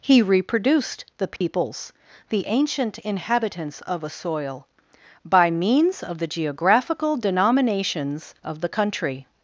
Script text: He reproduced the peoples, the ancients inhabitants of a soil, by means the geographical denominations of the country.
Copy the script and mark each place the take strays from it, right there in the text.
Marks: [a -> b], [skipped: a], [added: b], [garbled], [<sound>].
He reproduced the peoples, [dropout] the [ancients -> ancient] inhabitants of a soil, by means [added: of] the geographical denominations of the country.